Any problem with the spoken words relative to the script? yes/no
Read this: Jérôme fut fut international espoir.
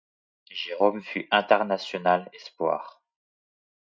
yes